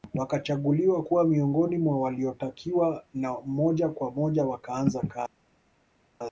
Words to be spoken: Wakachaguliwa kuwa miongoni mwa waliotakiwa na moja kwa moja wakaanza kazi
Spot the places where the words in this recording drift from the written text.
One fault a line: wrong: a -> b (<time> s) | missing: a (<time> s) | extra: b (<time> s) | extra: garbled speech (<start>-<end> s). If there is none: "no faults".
no faults